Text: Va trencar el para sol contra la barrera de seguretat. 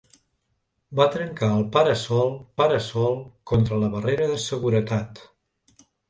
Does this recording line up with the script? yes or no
no